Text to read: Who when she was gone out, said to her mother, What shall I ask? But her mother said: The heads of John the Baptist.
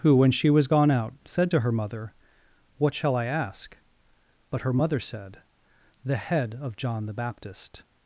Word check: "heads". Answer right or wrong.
wrong